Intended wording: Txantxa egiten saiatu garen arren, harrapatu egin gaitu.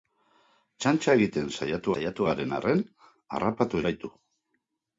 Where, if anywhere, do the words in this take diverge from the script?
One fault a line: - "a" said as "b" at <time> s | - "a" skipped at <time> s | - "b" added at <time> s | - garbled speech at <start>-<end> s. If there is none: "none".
- "saiatu" added at 1.9 s
- "egin" skipped at 3.8 s